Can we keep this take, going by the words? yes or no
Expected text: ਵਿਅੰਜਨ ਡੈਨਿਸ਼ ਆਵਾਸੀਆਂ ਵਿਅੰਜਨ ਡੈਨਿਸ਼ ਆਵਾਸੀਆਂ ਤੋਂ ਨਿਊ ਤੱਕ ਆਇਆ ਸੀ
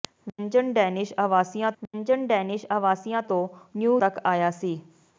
yes